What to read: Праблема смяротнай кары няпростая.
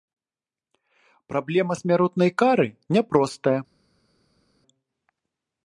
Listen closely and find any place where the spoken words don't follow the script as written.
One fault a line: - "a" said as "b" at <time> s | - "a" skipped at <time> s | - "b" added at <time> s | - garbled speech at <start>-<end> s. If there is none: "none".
none